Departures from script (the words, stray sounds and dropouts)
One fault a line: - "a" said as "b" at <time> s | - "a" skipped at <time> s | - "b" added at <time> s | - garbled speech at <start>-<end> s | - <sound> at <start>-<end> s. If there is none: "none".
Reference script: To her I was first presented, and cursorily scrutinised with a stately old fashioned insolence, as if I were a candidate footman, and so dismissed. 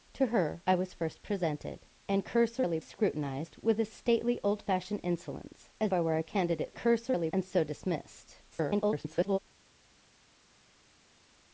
- "if" skipped at 5.9 s
- "footman" said as "cursorily" at 6.8 s
- garbled speech at 8.5-9.4 s